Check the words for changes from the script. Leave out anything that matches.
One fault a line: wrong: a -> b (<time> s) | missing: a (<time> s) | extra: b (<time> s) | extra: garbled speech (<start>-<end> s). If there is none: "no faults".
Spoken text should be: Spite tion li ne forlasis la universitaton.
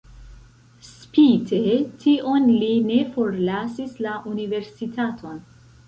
no faults